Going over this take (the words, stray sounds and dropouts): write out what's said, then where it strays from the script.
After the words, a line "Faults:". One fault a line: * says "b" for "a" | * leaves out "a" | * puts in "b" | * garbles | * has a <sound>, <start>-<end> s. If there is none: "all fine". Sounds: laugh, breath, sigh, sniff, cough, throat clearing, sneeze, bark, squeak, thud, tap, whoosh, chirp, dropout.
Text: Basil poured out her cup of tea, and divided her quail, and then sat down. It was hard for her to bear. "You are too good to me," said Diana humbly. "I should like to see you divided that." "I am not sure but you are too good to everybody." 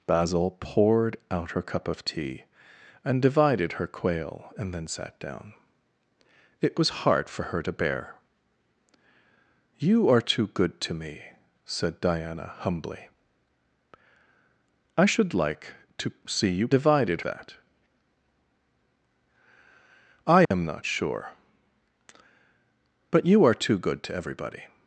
Basil poured out her cup of tea, and divided her quail, and then sat down. It was hard for her to bear. "You are too good to me," said Diana humbly. "I should like to see you divided that." "I am not sure but you are too good to everybody."
Faults:
* has a dropout, 20.4-20.5 s